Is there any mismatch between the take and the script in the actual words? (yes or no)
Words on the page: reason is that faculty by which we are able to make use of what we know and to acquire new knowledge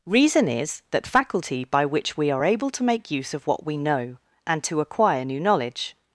no